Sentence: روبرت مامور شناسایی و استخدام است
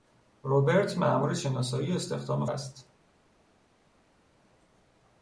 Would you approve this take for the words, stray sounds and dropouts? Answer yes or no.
yes